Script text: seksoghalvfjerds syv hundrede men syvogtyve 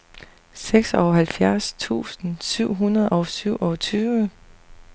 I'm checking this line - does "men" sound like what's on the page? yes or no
no